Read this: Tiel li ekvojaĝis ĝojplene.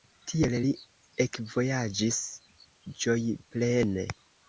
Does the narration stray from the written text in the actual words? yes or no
no